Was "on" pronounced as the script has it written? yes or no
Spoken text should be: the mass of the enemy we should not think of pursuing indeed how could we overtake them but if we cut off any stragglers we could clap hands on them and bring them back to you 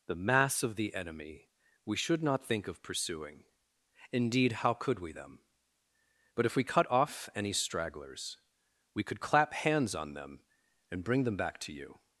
yes